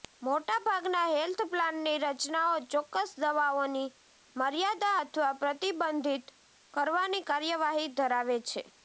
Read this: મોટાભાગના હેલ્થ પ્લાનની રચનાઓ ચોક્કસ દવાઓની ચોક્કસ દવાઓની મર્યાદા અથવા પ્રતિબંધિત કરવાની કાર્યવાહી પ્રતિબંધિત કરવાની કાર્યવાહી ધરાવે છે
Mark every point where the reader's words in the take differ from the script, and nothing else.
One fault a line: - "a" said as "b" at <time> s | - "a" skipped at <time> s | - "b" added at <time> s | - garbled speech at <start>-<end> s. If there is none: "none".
- "ચોક્કસ દવાઓની" skipped at 3.9 s
- "પ્રતિબંધિત કરવાની કાર્યવાહી" skipped at 7.9 s